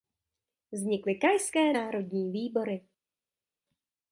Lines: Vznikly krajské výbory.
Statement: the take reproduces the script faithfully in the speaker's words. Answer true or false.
false